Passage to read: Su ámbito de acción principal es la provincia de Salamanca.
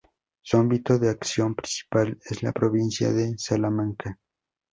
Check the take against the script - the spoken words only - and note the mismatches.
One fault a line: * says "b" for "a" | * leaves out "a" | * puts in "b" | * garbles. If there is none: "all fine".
all fine